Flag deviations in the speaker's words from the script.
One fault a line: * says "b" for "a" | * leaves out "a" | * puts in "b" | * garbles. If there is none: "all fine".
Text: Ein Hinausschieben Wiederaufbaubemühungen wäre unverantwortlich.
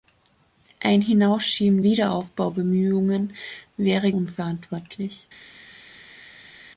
all fine